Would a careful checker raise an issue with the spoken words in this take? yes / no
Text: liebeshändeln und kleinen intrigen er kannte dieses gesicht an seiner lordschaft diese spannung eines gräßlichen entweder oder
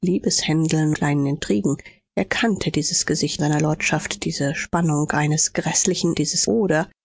yes